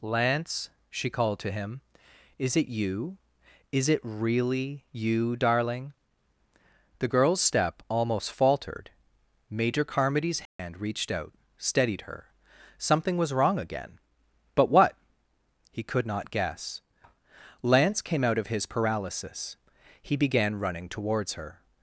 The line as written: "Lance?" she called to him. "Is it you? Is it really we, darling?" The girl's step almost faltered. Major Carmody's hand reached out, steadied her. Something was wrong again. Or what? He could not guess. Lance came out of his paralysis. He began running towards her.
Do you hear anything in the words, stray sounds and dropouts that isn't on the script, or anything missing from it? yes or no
yes